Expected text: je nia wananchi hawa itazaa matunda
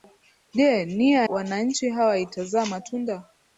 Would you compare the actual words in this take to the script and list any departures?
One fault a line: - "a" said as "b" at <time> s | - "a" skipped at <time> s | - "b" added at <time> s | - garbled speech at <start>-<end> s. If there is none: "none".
none